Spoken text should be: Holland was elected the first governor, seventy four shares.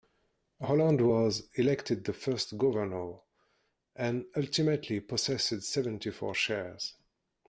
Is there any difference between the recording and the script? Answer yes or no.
yes